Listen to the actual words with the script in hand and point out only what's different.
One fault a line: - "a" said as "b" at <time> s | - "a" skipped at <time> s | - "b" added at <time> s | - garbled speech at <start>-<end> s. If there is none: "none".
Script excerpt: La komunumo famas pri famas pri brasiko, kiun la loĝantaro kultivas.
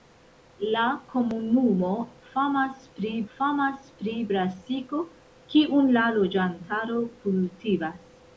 none